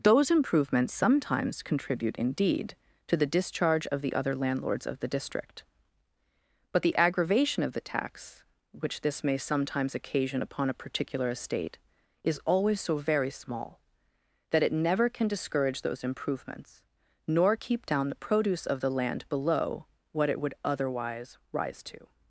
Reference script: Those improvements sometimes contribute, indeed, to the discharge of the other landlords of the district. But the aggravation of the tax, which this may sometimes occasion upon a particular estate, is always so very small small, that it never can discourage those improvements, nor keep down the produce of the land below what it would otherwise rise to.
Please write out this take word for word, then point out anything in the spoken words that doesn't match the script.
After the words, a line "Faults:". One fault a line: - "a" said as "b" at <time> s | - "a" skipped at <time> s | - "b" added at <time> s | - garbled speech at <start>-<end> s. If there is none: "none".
Those improvements sometimes contribute, indeed, to the discharge of the other landlords of the district. But the aggravation of the tax, which this may sometimes occasion upon a particular estate, is always so very small, that it never can discourage those improvements, nor keep down the produce of the land below what it would otherwise rise to.
Faults:
- "small" skipped at 13.8 s